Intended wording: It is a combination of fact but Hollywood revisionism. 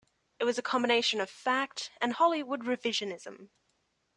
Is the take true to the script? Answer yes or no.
no